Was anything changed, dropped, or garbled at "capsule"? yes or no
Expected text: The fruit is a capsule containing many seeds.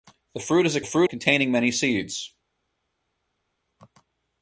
yes